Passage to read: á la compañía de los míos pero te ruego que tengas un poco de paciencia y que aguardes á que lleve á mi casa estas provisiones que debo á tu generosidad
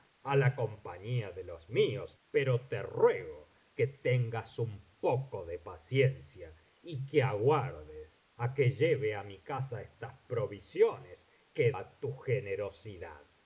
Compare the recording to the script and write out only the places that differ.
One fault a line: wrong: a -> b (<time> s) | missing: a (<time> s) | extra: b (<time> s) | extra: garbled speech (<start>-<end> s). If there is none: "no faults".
missing: debo (11.7 s)